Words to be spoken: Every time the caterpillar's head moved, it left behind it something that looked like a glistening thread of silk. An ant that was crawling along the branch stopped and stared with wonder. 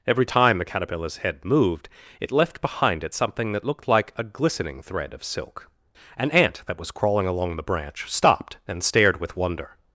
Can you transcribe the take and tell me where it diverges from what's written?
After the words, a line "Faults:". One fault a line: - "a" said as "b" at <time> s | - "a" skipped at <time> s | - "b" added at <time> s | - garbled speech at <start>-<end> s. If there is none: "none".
Every time the caterpillar's head moved, it left behind it something that looked like a glistening thread of silk. An ant that was crawling along the branch stopped and stared with wonder.
Faults:
none